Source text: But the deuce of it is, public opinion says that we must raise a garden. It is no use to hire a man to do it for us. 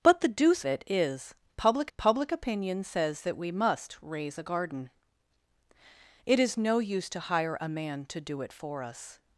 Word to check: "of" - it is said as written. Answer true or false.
false